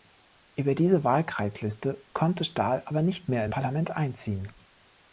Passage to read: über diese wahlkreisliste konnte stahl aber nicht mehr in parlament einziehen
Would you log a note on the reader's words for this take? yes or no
no